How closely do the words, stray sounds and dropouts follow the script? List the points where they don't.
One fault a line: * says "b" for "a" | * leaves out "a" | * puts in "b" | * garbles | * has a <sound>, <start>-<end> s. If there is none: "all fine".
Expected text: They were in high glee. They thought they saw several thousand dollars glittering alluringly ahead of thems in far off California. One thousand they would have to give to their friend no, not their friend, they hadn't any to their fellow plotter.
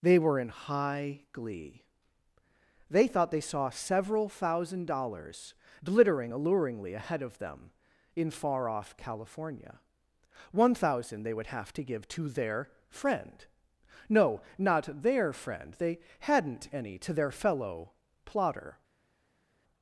* says "them" for "thems"